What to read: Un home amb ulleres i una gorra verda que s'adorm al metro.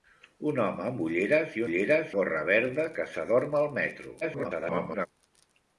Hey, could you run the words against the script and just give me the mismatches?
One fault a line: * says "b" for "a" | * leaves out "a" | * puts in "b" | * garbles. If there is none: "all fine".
* says "ulleres" for "una"
* garbles